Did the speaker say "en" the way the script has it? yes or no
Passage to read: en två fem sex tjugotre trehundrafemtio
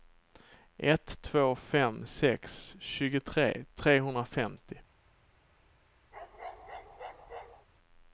no